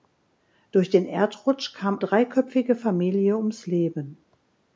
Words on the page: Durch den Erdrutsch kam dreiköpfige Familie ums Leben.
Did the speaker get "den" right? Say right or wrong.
right